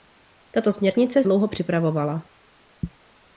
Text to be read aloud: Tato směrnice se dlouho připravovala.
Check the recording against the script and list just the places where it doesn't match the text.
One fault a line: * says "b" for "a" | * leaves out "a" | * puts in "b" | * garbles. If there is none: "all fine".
* leaves out "se"